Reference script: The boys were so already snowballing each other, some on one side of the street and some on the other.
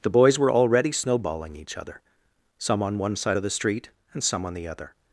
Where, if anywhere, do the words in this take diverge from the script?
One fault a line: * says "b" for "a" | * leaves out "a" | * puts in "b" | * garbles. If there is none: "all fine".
* leaves out "so"